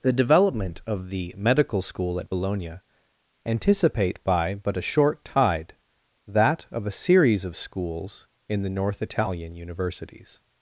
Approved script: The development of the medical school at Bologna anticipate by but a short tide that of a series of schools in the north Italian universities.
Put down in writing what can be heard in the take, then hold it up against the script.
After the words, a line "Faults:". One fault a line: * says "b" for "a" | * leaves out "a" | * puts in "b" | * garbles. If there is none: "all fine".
The development of the medical school at Bologna anticipate by but a short tide that of a series of schools in the north Italian universities.
Faults:
all fine